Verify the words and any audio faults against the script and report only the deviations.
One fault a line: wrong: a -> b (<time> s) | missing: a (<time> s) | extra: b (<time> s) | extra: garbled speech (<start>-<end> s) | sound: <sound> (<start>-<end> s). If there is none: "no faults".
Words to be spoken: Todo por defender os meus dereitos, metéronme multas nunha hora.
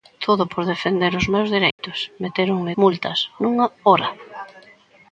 sound: dropout (1.7-1.8 s)